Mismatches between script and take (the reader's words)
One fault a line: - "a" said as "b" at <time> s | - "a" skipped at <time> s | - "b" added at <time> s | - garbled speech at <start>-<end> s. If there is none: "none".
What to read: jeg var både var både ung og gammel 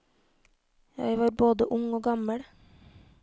- "var både" skipped at 1.7 s